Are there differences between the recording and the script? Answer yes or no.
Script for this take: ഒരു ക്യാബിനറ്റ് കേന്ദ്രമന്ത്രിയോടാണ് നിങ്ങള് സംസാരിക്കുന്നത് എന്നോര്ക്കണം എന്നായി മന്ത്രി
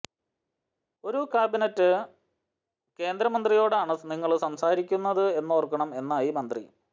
no